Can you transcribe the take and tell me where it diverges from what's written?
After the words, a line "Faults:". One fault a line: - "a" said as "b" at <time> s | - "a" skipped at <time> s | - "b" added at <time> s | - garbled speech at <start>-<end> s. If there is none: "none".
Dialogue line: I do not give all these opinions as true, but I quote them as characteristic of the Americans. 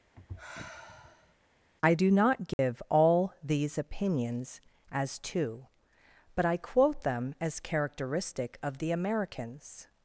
I do not give all these opinions as two, but I quote them as characteristic of the Americans.
Faults:
- "true" said as "two" at 5.2 s